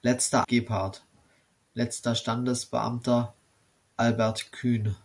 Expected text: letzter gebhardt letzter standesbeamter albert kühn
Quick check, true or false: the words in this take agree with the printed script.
true